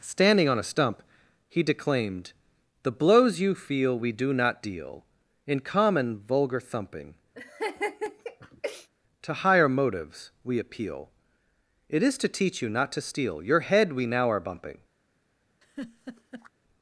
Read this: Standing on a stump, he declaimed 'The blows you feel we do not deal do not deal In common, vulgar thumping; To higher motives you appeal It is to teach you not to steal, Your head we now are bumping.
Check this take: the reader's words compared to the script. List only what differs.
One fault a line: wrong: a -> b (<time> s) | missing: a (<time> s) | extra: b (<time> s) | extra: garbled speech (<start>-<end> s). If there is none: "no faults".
missing: do not deal (5.0 s)
wrong: you -> we (10.4 s)